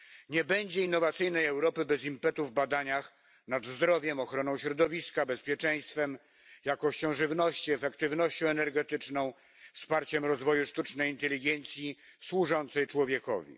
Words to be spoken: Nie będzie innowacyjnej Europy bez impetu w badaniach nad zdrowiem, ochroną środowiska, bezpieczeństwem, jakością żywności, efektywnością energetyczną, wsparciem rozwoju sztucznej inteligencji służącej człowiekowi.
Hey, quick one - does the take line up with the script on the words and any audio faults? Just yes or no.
yes